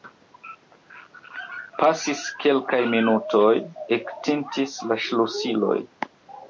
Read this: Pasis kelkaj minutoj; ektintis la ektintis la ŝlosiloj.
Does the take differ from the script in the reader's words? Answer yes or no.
yes